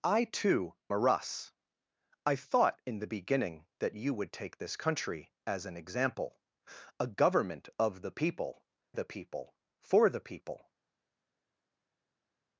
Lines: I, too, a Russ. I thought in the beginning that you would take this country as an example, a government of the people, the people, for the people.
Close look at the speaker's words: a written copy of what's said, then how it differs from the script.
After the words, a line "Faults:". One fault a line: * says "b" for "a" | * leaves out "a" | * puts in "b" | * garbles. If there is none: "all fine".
I, too, a Russ. I thought in the beginning that you would take this country as an example, a government of the people, the people, for the people.
Faults:
all fine